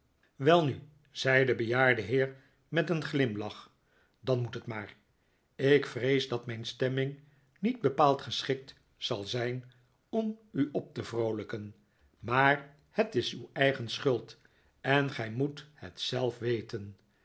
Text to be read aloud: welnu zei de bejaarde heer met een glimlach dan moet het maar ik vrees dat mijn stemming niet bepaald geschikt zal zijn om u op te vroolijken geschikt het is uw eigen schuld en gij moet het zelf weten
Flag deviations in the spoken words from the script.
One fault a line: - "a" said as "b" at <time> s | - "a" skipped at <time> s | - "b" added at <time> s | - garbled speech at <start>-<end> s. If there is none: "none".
- "geschikt" said as "maar" at 12.2 s